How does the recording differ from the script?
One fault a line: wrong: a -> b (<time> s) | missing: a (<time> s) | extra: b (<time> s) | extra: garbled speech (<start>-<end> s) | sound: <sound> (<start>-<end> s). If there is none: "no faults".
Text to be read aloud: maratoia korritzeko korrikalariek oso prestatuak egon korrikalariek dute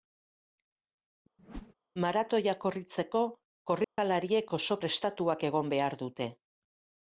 sound: whoosh (1.4-1.7 s)
sound: dropout (3.8-4.0 s)
wrong: korrikalariek -> behar (5.8 s)